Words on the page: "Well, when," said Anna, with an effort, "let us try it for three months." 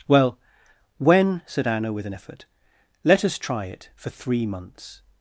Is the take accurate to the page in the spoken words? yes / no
yes